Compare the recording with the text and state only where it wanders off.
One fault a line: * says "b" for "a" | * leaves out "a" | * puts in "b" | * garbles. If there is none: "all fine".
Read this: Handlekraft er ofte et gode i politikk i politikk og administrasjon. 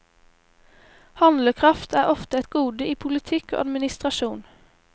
* leaves out "i politikk"